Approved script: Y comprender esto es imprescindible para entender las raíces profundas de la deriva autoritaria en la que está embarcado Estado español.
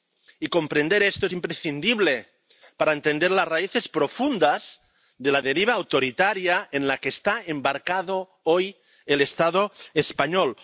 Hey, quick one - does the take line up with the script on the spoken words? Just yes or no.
no